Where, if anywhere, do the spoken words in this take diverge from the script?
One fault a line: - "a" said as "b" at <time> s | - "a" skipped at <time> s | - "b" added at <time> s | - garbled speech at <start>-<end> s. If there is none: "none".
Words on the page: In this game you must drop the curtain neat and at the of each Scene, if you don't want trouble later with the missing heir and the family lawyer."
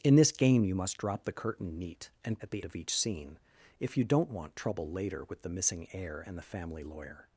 none